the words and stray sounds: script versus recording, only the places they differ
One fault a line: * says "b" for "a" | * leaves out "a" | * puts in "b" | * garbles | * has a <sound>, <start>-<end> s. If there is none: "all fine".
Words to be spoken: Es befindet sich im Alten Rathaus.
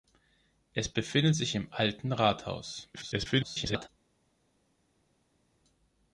* garbles